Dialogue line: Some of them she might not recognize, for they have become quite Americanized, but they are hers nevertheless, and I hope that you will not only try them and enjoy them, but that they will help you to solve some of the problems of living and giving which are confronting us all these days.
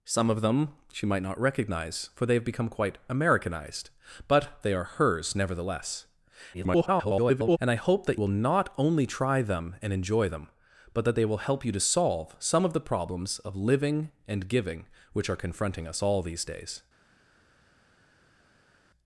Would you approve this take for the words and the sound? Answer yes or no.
no